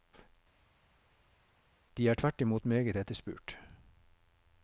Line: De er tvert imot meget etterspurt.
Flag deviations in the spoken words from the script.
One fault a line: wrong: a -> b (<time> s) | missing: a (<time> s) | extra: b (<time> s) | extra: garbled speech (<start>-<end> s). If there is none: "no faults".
no faults